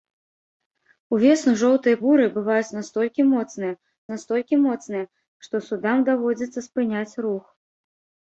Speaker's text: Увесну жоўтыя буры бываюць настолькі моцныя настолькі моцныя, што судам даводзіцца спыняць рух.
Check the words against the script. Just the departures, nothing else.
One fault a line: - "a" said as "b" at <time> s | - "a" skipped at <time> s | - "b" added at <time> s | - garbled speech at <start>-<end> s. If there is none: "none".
none